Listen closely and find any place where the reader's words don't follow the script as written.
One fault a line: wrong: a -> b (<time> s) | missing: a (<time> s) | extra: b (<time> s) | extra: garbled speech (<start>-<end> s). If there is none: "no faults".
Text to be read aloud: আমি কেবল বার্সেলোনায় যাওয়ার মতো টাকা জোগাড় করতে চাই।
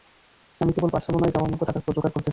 no faults